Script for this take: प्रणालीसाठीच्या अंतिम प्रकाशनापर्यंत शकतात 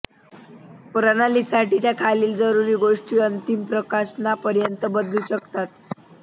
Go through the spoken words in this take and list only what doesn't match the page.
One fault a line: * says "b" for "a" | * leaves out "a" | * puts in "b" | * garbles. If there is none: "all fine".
* puts in "खालील जरुरी गोष्टी"
* puts in "बदलू"